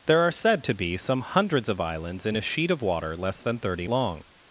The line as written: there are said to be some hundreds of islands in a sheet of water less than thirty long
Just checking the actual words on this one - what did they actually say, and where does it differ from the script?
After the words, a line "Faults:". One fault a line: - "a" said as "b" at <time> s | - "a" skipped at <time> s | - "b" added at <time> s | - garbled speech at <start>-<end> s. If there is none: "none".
there are said to be some hundreds of islands in a sheet of water less than thirty long
Faults:
none